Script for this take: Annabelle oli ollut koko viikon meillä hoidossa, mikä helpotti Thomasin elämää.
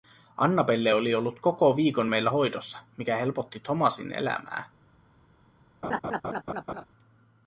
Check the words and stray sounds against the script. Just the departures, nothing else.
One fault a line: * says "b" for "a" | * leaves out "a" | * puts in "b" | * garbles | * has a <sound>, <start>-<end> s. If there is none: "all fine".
* has a laugh, 5.8-6.8 s